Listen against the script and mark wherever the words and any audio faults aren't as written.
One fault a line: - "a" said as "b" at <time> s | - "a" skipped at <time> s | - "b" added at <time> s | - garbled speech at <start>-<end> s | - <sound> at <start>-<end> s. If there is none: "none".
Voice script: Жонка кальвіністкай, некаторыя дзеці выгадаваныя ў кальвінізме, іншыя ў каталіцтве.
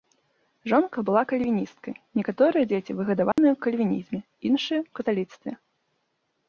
- "была" added at 1.1 s
- dropout at 3.3-3.4 s